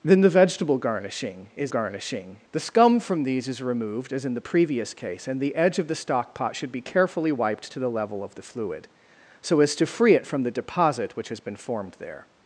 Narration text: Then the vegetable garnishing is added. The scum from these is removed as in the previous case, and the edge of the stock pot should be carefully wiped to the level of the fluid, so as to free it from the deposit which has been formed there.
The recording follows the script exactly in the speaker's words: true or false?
false